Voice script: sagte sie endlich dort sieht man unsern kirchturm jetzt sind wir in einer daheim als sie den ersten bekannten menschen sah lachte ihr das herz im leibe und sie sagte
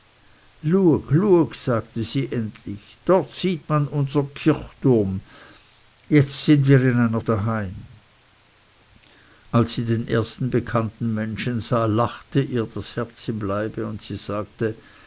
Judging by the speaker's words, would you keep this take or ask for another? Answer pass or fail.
pass